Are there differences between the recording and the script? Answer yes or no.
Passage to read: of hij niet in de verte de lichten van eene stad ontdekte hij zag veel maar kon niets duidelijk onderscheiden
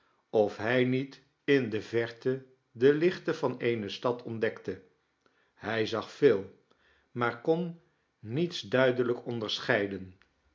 no